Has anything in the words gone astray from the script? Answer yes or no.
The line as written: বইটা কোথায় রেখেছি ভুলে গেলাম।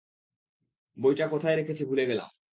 no